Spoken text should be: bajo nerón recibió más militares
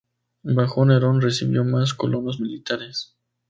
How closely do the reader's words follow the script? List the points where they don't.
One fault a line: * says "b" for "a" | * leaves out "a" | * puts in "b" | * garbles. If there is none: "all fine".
* puts in "colonos"